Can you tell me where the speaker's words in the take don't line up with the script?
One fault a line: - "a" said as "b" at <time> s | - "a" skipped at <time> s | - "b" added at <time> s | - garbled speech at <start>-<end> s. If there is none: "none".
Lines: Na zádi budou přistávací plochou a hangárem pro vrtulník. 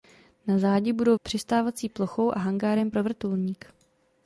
none